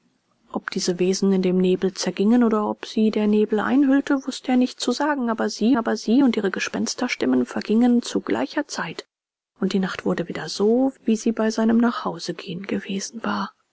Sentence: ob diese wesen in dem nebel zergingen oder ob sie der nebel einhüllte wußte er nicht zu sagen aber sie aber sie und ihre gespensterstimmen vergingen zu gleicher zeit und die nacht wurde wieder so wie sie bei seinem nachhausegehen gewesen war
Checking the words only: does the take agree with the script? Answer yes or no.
yes